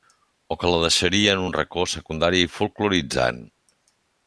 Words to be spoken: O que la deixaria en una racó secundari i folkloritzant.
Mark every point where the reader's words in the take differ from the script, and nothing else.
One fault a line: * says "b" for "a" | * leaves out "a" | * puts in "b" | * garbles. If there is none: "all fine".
* says "un" for "una"